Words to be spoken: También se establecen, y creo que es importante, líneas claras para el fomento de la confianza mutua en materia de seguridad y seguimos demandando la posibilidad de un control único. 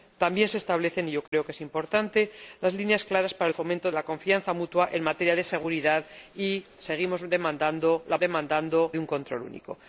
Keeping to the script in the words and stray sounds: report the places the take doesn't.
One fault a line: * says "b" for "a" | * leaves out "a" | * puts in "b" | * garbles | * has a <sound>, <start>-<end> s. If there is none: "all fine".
* has a dropout, 1.3-1.3 s
* leaves out "de"
* says "demandando" for "posibilidad"